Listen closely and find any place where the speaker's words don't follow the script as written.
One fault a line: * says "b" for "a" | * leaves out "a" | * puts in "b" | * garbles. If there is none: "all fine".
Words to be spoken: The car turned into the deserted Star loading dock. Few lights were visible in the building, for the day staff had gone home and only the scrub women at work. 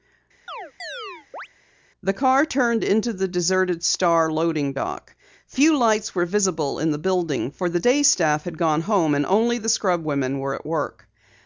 * puts in "were"